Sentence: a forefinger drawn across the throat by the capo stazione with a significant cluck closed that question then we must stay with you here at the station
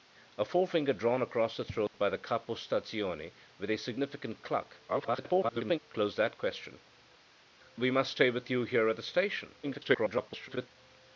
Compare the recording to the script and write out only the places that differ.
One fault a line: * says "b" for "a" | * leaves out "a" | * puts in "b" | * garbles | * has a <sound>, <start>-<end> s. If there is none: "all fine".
* has a dropout, 1.9-1.9 s
* garbles
* leaves out "then"
* garbles